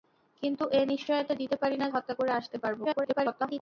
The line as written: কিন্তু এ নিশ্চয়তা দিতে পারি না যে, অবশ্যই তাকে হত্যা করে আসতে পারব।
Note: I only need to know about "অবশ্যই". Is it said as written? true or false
false